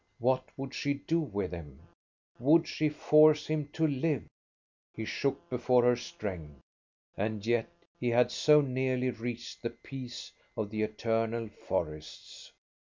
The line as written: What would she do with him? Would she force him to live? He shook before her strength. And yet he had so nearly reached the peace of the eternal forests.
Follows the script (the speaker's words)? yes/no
yes